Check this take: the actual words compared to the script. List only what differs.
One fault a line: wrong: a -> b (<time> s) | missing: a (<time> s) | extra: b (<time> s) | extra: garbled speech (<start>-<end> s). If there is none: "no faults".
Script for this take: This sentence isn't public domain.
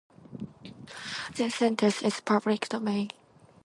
wrong: isn't -> is (2.0 s)